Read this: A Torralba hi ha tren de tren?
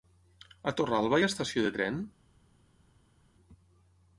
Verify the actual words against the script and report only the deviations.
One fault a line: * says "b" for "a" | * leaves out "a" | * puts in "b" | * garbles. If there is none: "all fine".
* says "estació" for "tren"